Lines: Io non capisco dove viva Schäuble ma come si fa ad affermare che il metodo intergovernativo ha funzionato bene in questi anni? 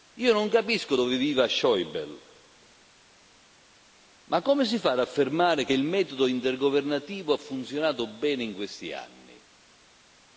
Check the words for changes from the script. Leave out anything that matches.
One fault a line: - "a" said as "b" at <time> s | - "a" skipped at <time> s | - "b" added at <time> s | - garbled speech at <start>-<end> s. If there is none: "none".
none